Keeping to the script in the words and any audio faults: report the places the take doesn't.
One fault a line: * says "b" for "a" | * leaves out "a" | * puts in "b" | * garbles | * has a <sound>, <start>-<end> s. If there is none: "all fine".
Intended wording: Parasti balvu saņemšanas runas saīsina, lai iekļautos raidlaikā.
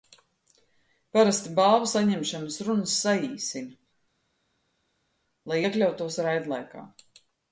all fine